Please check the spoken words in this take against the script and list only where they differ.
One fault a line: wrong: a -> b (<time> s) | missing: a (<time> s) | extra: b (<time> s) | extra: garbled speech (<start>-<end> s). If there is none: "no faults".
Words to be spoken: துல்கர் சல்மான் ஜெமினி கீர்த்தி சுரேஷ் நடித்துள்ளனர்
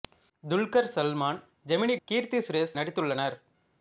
no faults